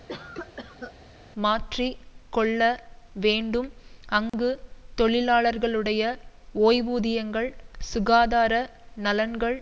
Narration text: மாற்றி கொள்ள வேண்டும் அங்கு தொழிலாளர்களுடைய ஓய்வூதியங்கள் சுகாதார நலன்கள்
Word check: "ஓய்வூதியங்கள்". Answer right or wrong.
right